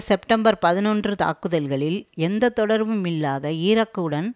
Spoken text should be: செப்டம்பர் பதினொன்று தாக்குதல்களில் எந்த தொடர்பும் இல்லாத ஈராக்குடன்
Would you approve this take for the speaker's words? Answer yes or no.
yes